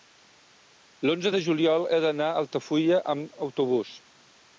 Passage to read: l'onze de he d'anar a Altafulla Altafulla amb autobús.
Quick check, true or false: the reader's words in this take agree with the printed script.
false